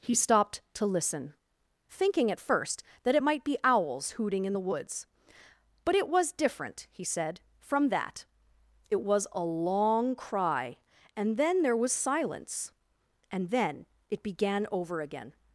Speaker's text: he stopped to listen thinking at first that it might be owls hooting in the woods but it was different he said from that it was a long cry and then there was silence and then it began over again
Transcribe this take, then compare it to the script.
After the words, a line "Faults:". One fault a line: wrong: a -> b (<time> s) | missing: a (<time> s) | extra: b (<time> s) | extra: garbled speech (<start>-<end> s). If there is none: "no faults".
he stopped to listen thinking at first that it might be owls hooting in the woods but it was different he said from that it was a long cry and then there was silence and then it began over again
Faults:
no faults